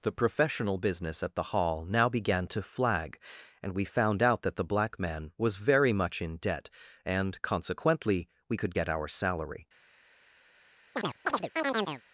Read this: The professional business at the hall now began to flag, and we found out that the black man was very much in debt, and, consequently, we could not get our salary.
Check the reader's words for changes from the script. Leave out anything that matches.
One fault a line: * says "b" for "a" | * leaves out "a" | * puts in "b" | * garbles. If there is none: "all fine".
* leaves out "not"